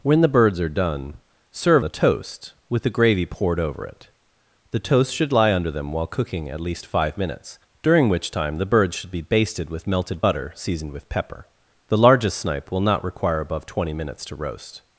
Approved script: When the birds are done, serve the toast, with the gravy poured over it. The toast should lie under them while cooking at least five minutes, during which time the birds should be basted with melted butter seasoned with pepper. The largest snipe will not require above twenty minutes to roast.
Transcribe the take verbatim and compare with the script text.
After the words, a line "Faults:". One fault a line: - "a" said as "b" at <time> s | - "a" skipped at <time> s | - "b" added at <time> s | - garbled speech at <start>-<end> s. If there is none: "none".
When the birds are done, serve the toast, with the gravy poured over it. The toast should lie under them while cooking at least five minutes, during which time the birds should be basted with melted butter seasoned with pepper. The largest snipe will not require above twenty minutes to roast.
Faults:
none